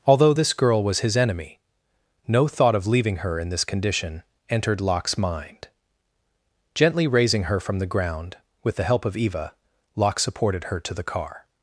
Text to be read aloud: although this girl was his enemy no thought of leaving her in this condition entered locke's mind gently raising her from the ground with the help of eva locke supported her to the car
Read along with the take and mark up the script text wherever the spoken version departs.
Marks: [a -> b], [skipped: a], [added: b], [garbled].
although this girl was his enemy no thought of leaving her in this condition entered locke's mind gently raising her from the ground with the help of eva locke supported her to the car